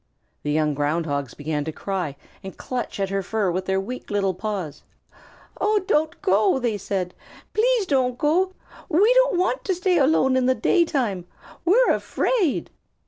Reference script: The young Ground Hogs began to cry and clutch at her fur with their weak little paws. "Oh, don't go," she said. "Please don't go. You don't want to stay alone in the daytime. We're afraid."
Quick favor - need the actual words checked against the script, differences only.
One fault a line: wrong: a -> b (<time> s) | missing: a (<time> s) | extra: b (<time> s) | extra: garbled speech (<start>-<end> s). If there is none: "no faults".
wrong: she -> they (6.6 s)
wrong: You -> We (8.9 s)